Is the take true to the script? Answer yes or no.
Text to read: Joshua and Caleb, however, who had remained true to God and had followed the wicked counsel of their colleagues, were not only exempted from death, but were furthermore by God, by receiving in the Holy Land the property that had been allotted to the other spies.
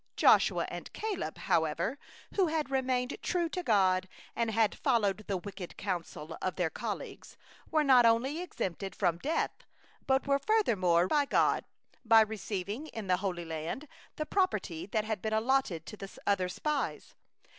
yes